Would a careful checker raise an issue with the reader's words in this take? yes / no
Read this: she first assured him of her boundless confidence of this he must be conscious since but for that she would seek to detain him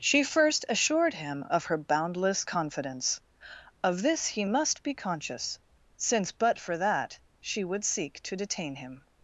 no